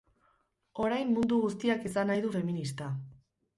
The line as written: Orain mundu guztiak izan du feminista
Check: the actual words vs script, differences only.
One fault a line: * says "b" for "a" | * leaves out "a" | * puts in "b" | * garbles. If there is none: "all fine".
* puts in "nahi"